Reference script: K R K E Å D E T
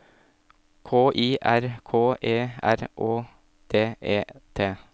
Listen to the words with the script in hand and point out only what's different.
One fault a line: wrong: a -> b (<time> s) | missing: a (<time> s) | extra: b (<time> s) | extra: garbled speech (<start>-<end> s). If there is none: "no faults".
extra: I (1.1 s)
extra: R (2.6 s)